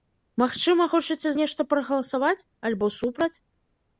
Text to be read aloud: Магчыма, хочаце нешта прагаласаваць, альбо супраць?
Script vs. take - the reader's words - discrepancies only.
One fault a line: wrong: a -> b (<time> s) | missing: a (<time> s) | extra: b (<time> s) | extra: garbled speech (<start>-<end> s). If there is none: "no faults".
no faults